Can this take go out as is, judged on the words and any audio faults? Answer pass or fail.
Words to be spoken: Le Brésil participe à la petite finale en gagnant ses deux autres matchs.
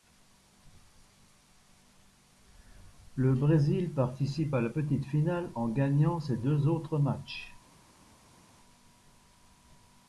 pass